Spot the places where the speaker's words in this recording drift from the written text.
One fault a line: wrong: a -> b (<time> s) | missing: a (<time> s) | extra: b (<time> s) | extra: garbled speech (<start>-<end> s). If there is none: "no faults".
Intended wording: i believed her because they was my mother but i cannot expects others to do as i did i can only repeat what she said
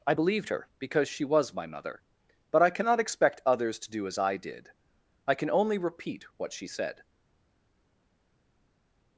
wrong: they -> she (1.1 s)
wrong: expects -> expect (3.0 s)